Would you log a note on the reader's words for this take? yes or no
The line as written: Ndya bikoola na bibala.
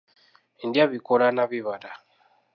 no